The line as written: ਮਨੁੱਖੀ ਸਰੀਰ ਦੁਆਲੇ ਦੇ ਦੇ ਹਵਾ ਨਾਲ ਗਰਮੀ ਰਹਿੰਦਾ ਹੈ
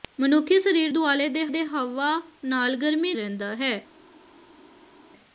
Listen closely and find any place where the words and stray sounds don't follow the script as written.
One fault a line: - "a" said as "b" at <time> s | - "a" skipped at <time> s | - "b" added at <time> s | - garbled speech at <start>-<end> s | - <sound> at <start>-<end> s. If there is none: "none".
none